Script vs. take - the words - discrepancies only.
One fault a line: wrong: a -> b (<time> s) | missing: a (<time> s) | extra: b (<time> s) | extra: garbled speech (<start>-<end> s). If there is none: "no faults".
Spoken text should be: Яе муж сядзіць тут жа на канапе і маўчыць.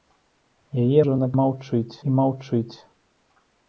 missing: муж сядзіць тут (1.0 s)
wrong: канапе -> маўчыць (1.4 s)